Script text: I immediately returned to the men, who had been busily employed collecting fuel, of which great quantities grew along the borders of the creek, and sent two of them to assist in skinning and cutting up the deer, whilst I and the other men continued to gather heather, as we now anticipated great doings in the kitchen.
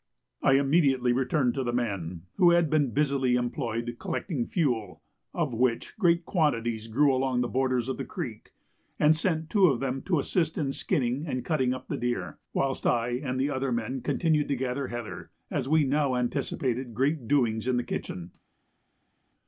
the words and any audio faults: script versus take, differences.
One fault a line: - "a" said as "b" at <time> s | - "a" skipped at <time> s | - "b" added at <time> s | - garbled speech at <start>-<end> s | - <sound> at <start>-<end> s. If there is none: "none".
none